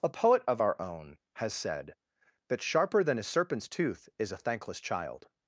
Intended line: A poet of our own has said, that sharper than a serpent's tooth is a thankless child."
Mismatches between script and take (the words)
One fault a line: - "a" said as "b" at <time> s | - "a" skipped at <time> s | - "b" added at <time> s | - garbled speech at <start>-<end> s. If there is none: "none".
none